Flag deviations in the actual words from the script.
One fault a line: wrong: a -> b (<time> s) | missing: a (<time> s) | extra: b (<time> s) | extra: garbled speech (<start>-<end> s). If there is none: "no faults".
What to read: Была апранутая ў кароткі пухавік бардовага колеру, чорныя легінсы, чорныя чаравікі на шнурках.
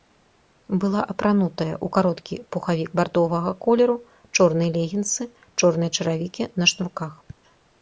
no faults